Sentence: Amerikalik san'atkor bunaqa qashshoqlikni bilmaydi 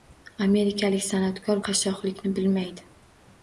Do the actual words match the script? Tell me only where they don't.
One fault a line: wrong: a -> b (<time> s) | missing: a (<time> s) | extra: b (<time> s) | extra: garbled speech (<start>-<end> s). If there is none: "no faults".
missing: bunaqa (1.6 s)